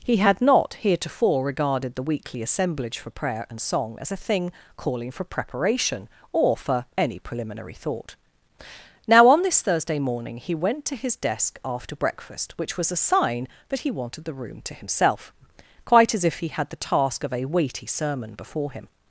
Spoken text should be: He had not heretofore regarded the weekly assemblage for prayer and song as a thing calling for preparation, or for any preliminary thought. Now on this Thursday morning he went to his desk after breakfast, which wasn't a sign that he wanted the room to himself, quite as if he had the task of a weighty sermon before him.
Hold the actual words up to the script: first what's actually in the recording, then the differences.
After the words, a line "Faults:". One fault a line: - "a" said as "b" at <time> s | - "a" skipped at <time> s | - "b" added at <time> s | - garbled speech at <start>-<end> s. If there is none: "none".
He had not heretofore regarded the weekly assemblage for prayer and song as a thing calling for preparation, or for any preliminary thought. Now on this Thursday morning he went to his desk after breakfast, which was a sign that he wanted the room to himself, quite as if he had the task of a weighty sermon before him.
Faults:
- "wasn't" said as "was" at 12.8 s